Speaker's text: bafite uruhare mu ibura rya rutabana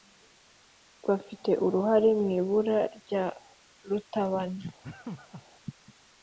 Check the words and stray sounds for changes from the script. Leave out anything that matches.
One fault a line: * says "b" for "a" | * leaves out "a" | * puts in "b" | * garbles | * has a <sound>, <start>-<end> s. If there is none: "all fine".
* has a laugh, 4.8-5.5 s